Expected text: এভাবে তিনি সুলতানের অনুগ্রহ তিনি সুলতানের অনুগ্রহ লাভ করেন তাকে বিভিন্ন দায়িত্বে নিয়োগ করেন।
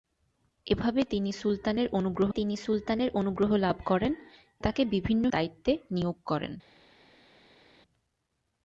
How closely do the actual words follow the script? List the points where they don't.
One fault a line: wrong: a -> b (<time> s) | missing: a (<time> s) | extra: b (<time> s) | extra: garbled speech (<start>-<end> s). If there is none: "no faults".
no faults